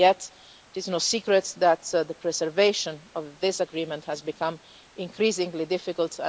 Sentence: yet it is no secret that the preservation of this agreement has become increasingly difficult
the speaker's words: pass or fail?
pass